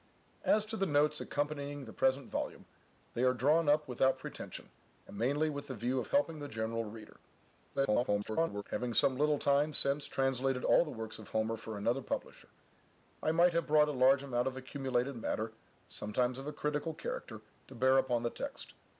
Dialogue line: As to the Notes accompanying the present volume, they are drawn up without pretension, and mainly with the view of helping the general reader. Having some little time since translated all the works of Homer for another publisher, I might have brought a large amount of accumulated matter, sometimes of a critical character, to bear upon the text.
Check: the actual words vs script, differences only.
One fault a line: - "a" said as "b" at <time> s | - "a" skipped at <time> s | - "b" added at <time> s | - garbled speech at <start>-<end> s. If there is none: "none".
- garbled speech at 7.7-8.6 s